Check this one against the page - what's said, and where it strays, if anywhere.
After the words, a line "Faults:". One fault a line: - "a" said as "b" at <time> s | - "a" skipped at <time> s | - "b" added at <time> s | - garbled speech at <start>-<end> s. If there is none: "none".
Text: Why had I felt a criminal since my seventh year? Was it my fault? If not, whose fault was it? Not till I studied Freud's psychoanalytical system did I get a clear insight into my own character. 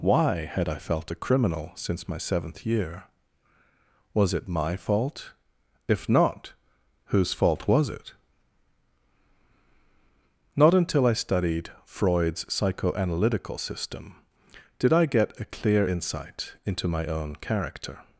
Why had I felt a criminal since my seventh year? Was it my fault? If not, whose fault was it? Not until I studied Freud's psychoanalytical system did I get a clear insight into my own character.
Faults:
- "till" said as "until" at 10.7 s